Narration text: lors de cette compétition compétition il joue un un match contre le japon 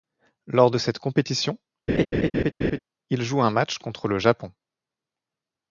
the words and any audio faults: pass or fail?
fail